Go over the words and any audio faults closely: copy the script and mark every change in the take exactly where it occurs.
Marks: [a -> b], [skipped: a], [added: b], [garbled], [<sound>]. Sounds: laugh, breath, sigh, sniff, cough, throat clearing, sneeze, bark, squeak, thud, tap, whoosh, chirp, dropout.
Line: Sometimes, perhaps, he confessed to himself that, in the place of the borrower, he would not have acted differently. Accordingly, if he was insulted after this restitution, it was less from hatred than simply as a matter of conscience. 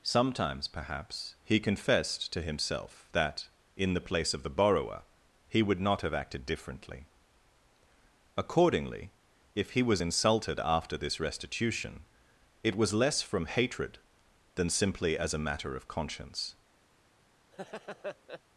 Sometimes, perhaps, he confessed to himself that, in the place of the borrower, he would not have acted differently. Accordingly, if he was insulted after this restitution, it was less from hatred than simply as a matter of conscience. [laugh]